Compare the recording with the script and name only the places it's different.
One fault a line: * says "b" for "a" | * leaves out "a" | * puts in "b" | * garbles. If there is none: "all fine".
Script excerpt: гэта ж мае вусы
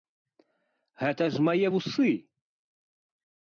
all fine